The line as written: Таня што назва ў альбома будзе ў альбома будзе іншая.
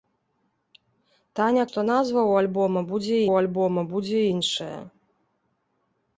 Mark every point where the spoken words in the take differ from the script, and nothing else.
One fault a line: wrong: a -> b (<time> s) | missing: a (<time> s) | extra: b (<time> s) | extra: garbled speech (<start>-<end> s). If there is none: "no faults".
no faults